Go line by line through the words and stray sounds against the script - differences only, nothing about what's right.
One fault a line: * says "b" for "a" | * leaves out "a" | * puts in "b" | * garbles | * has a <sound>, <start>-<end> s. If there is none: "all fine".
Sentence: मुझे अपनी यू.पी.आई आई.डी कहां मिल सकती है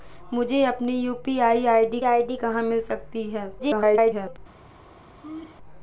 * puts in "आई.डी"
* garbles
* has a laugh, 5.2-5.6 s